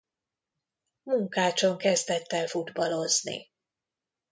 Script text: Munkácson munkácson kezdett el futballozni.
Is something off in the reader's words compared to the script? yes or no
yes